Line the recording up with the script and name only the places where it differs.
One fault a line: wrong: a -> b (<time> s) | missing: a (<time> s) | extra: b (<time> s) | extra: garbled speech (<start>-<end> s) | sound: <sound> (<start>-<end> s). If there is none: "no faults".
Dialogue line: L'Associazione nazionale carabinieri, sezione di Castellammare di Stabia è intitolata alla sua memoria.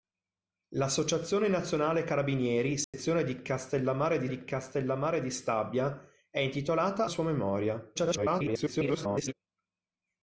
sound: dropout (2.8-2.9 s)
extra: di Castellammare di (4.3 s)
missing: alla (7.1 s)
extra: garbled speech (8.0-9.3 s)